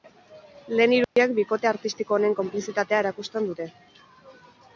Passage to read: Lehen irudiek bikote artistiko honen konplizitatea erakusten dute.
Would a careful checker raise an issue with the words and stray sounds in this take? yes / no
yes